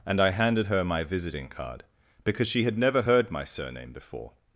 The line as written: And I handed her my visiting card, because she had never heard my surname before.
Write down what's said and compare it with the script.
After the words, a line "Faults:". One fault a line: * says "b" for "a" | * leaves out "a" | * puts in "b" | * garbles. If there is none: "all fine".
And I handed her my visiting card, because she had never heard my surname before.
Faults:
all fine